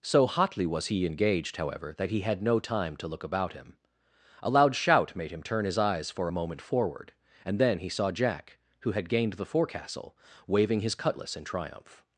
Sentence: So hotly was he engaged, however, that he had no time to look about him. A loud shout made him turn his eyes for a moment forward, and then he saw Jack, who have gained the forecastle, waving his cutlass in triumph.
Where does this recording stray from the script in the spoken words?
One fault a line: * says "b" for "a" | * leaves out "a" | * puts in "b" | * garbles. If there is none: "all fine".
* says "had" for "have"